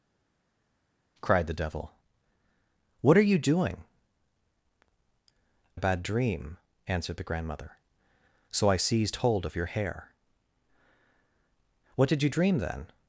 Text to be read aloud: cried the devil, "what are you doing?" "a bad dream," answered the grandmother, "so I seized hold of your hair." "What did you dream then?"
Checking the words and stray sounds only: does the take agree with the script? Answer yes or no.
yes